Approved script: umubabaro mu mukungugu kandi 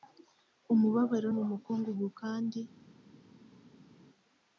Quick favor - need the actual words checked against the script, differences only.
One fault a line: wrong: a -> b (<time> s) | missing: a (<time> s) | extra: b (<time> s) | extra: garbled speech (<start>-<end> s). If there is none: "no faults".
no faults